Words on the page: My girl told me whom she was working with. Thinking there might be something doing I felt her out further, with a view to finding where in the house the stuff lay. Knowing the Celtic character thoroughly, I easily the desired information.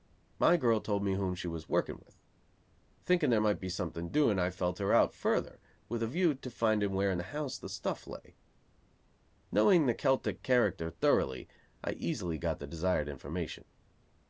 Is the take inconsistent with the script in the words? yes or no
yes